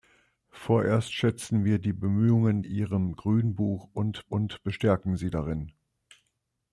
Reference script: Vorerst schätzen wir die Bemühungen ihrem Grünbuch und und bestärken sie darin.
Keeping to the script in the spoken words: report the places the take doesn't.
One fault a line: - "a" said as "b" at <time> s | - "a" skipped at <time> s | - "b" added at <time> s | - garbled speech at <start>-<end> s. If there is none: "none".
none